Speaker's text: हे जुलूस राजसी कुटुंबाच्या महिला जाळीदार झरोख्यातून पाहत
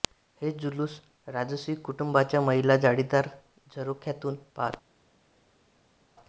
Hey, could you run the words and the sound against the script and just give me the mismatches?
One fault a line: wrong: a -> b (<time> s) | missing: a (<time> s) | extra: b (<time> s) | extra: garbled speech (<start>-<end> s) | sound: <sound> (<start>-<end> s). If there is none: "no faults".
no faults